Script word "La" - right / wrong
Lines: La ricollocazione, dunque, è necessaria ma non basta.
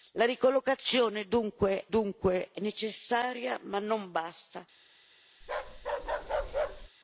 right